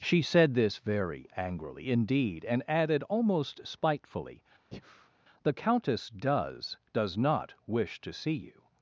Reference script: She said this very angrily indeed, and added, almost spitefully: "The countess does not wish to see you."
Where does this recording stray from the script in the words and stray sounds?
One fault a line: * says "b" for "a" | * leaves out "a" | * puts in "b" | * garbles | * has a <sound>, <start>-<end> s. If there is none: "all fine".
* has a breath, 4.7-5.1 s
* puts in "does"